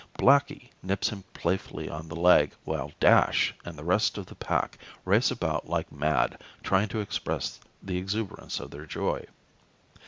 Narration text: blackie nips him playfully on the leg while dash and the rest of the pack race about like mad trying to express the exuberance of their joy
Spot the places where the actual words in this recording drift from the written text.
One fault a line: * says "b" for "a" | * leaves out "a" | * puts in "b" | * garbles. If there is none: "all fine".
all fine